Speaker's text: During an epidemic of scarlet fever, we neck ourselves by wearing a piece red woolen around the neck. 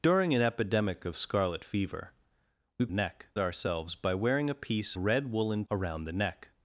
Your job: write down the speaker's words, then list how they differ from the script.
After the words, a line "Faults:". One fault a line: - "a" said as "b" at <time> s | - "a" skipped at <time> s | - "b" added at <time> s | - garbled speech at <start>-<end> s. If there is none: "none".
During an epidemic of scarlet fever, we neck ourselves by wearing a piece red woolen around the neck.
Faults:
none